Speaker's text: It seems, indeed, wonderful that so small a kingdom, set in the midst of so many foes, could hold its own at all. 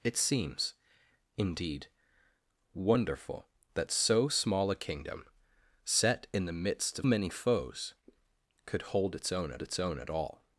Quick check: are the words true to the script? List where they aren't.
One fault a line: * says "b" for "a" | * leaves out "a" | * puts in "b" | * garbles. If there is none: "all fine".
* leaves out "so"
* puts in "its own at"